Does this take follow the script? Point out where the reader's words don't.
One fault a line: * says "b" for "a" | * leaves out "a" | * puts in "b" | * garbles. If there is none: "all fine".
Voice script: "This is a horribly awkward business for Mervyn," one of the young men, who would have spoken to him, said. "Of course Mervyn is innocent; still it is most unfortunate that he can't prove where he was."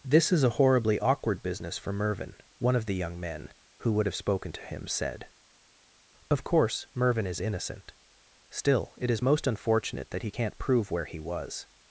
all fine